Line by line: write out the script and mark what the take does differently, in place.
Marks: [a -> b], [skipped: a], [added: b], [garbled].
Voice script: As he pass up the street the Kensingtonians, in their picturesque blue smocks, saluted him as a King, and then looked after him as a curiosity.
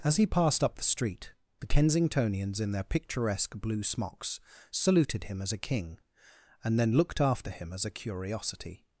As he [pass -> passed] up the street the Kensingtonians, in their picturesque blue smocks, saluted him as a King, and then looked after him as a curiosity.